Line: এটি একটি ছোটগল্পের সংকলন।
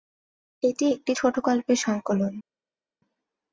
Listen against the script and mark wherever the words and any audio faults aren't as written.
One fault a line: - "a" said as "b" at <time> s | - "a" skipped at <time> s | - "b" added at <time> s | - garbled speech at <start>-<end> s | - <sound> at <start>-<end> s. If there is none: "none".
none